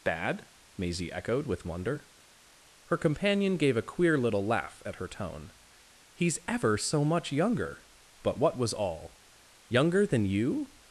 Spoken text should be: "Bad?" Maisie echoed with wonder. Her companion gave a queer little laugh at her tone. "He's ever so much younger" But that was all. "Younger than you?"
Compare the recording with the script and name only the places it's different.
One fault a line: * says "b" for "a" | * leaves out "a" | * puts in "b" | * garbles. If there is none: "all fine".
* says "what" for "that"